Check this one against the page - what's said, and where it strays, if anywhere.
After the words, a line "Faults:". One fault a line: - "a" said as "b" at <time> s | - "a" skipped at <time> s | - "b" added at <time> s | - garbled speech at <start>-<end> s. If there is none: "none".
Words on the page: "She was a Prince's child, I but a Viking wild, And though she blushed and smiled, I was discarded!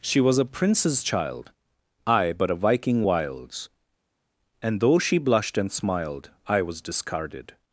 "She was a Prince's child, I but a Viking wilds, And though she blushed and smiled, I was discarded!
Faults:
- "wild" said as "wilds" at 3.0 s